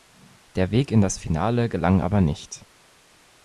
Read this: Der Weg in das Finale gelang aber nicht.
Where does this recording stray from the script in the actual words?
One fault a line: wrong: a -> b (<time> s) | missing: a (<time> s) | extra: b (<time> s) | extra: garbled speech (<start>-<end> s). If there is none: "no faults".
no faults